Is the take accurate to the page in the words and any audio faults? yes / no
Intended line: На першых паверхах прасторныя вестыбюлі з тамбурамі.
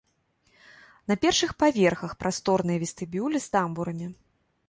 yes